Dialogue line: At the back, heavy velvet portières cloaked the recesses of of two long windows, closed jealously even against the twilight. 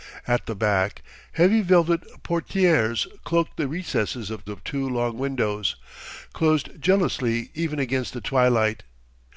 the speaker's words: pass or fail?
pass